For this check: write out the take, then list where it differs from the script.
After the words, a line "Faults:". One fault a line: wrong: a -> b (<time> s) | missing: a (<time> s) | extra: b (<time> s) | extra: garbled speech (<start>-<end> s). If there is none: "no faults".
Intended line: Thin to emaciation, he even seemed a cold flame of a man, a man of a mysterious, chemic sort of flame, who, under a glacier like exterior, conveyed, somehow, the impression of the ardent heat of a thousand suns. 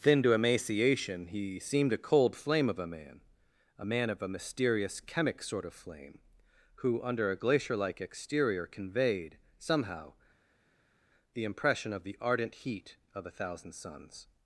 Thin to emaciation, he seemed a cold flame of a man, a man of a mysterious, chemic sort of flame, who, under a glacier like exterior, conveyed, somehow, the impression of the ardent heat of a thousand suns.
Faults:
missing: even (1.6 s)